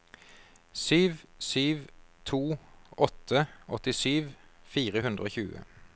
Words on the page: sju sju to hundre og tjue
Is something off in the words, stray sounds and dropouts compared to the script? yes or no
yes